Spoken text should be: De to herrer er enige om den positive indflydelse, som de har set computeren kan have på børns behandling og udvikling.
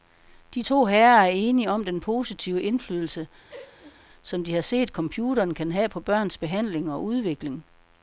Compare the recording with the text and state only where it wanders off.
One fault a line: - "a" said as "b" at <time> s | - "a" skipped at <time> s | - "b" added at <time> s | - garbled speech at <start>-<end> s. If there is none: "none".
none